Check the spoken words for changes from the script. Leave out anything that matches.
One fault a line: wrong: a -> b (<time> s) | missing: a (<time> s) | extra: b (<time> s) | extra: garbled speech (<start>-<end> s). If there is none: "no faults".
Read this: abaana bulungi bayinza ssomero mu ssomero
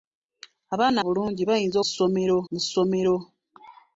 no faults